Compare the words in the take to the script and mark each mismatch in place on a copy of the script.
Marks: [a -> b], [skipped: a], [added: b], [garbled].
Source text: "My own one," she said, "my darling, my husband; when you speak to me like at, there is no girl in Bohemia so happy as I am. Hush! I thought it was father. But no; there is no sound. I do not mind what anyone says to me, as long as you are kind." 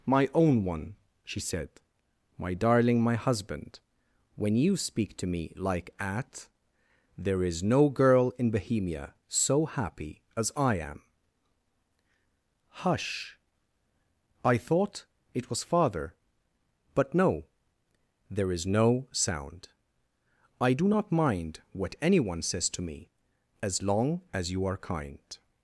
"My own one," she said, "my darling, my husband; when you speak to me like at, there is no girl in Bohemia so happy as I am. Hush! I thought it was father. But no; there is no sound. I do not mind what anyone says to me, as long as you are kind."